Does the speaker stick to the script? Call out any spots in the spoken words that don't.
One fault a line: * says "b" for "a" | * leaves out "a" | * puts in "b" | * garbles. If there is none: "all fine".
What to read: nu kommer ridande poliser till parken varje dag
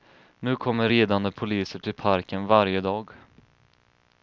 all fine